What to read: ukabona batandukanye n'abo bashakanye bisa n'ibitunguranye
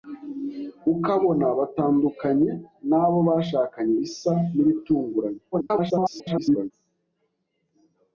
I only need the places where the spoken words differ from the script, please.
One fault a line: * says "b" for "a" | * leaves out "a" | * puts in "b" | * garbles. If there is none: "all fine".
* garbles